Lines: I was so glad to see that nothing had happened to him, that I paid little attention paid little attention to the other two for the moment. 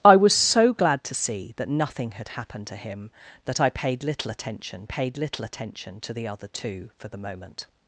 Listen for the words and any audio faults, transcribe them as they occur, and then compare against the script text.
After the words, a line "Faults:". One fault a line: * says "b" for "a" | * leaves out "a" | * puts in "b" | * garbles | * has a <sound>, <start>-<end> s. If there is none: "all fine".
I was so glad to see that nothing had happened to him, that I paid little attention paid little attention to the other two for the moment.
Faults:
all fine